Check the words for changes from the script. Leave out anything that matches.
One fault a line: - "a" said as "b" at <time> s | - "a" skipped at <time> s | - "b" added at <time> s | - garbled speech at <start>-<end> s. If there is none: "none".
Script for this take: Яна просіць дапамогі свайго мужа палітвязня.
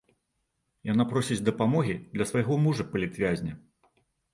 - "для" added at 2.2 s